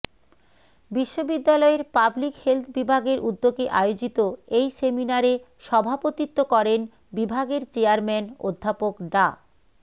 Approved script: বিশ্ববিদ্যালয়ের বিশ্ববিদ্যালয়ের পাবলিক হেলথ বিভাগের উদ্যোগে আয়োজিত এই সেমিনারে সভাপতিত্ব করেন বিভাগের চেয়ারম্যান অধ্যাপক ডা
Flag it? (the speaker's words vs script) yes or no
yes